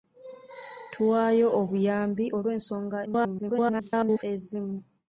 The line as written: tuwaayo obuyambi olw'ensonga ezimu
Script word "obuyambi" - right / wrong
right